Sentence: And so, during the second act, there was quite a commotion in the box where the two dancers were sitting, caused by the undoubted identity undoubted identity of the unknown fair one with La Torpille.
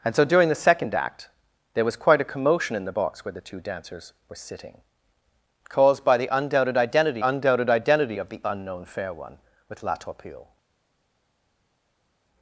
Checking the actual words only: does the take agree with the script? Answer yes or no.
yes